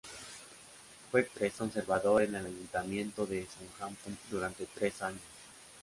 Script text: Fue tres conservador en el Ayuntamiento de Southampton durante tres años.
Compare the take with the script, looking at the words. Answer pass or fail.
pass